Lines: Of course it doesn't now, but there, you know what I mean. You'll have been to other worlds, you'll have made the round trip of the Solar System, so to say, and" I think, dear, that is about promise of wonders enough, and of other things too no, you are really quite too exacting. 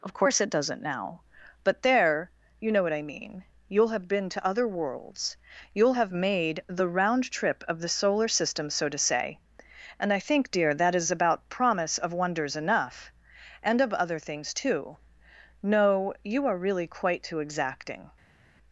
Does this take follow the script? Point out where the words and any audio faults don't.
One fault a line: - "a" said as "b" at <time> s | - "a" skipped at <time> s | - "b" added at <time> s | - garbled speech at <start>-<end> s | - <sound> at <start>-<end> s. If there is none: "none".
none